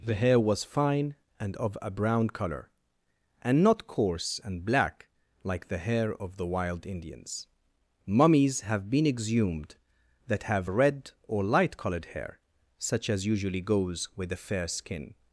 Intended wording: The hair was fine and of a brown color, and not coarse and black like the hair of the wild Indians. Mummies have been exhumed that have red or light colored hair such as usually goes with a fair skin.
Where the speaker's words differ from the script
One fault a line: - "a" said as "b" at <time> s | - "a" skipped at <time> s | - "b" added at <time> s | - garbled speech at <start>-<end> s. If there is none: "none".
none